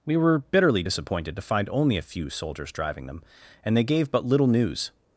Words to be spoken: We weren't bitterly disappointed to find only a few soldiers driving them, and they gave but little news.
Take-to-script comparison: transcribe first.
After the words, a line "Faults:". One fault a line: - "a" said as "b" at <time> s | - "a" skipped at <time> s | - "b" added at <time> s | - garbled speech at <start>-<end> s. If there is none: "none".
We were bitterly disappointed to find only a few soldiers driving them, and they gave but little news.
Faults:
- "weren't" said as "were" at 0.2 s